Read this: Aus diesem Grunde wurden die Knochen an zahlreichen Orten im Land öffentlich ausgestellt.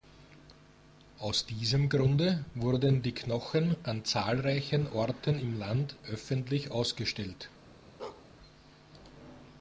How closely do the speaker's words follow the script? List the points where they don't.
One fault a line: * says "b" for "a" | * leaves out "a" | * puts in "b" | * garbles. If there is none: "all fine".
all fine